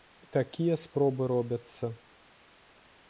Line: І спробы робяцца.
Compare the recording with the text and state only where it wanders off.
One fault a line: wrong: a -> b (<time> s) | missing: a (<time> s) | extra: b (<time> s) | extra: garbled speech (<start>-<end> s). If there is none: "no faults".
extra: такія (0.4 s)